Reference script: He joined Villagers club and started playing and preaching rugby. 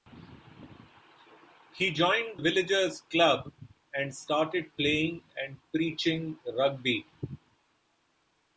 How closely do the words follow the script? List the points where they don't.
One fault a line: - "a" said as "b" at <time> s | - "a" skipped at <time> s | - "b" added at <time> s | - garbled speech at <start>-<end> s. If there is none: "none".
none